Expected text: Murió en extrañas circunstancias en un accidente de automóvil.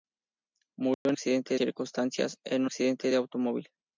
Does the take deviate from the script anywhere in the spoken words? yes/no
yes